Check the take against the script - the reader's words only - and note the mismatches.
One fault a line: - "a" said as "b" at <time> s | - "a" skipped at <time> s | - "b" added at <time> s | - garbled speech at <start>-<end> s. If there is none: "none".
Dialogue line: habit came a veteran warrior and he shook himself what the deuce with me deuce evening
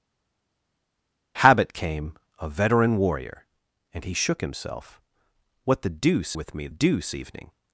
none